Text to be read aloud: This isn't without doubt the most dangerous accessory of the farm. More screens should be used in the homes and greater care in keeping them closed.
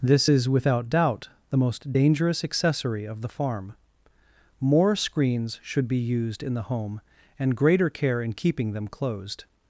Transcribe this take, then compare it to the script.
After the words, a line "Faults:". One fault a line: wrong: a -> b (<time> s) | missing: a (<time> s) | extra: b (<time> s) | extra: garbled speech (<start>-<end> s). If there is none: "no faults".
This is without doubt the most dangerous accessory of the farm. More screens should be used in the home and greater care in keeping them closed.
Faults:
wrong: isn't -> is (0.3 s)
wrong: homes -> home (6.6 s)